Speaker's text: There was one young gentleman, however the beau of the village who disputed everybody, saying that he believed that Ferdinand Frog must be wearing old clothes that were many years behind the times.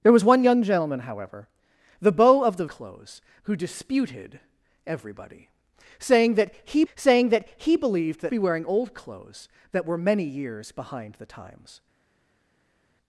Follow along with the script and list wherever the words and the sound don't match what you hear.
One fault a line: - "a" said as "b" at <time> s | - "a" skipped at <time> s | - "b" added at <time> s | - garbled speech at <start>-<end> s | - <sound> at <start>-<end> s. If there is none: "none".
- "village" said as "clothes" at 2.7 s
- "believed" said as "saying" at 6.9 s
- "Ferdinand Frog must" said as "he believed that" at 7.6 s